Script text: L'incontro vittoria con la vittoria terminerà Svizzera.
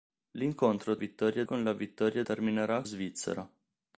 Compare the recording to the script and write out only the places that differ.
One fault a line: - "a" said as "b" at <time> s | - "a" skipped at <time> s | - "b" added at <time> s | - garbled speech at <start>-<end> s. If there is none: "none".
none